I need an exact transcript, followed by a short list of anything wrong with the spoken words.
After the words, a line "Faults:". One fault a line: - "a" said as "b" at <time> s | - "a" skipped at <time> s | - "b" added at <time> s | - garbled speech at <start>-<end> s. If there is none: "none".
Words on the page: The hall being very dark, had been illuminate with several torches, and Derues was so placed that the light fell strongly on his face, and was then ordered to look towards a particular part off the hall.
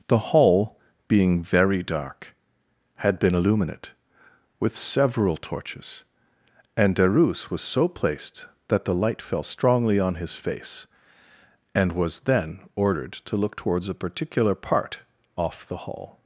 The hall being very dark, had been illuminate with several torches, and Derues was so placed that the light fell strongly on his face, and was then ordered to look towards a particular part off the hall.
Faults:
none